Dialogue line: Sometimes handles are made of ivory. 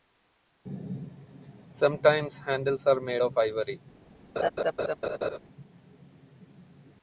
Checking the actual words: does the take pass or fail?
pass